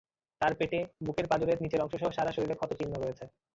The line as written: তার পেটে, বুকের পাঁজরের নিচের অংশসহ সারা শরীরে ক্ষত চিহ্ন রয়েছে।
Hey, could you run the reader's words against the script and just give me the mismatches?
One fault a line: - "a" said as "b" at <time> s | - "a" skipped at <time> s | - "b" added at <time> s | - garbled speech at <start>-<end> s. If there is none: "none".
none